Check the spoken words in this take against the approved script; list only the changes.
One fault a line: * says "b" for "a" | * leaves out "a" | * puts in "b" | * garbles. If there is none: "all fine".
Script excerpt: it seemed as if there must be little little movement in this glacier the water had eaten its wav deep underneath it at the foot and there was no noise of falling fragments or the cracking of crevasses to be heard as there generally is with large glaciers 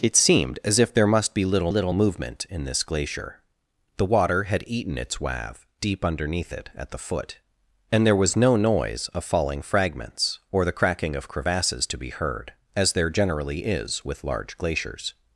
all fine